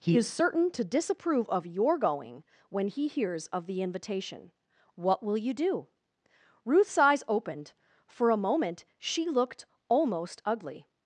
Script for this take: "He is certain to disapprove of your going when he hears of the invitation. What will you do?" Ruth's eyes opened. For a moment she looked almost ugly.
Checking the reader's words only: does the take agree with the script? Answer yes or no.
yes